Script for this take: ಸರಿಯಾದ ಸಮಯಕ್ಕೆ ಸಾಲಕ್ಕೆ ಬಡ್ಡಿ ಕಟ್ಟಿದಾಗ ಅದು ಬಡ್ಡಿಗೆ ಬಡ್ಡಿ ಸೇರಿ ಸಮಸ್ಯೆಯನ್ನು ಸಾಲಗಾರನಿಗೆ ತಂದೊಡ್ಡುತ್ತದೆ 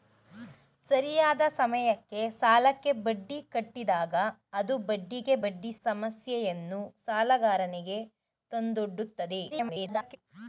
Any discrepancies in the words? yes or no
yes